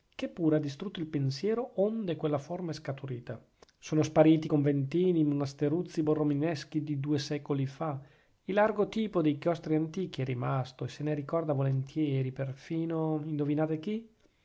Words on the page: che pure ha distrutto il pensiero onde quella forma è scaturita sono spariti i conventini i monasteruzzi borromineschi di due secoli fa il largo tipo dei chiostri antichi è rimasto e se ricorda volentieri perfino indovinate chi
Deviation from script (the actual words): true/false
true